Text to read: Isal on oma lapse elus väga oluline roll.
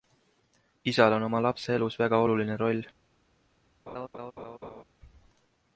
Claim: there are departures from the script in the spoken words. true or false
false